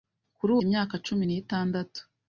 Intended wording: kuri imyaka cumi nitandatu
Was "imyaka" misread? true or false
false